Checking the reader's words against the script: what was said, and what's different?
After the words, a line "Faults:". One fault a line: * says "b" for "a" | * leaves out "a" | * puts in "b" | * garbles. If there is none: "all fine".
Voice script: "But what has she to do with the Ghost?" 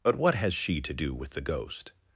"But what has she to do with the Ghost?"
Faults:
all fine